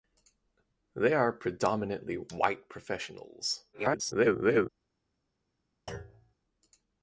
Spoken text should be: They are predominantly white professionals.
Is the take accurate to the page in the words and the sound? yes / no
no